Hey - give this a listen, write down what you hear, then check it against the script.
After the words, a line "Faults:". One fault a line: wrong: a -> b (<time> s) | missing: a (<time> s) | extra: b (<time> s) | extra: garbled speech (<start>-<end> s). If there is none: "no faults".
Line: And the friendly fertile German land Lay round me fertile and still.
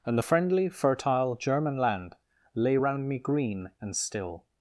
And the friendly fertile German land Lay round me green and still.
Faults:
wrong: fertile -> green (3.2 s)